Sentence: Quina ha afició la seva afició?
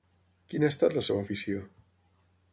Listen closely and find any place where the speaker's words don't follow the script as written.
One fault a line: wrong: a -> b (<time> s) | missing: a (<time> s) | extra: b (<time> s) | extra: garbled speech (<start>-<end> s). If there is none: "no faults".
wrong: afició -> estat (0.7 s)